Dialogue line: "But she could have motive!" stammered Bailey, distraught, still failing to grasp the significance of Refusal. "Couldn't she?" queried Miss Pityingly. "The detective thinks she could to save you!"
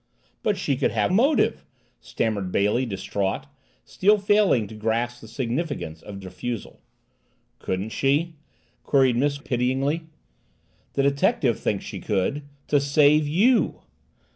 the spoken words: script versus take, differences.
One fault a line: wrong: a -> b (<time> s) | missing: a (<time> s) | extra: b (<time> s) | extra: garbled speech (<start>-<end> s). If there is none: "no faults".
no faults